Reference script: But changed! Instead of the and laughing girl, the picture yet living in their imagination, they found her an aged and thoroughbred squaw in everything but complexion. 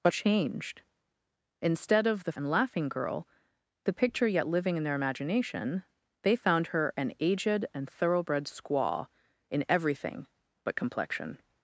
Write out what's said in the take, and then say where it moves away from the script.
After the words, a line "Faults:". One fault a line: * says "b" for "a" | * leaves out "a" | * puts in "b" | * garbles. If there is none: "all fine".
But changed! Instead of the and laughing girl, the picture yet living in their imagination, they found her an aged and thoroughbred squaw in everything but complexion.
Faults:
all fine